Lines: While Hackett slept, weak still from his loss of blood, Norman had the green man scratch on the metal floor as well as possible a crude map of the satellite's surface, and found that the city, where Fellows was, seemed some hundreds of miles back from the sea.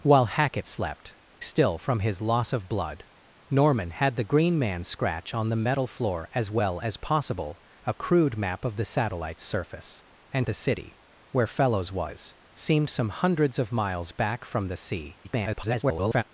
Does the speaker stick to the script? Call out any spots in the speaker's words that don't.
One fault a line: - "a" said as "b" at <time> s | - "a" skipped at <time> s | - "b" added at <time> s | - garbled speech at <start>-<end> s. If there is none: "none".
- "weak" skipped at 1.2 s
- "found that" skipped at 10.5 s
- garbled speech at 15.2-16.2 s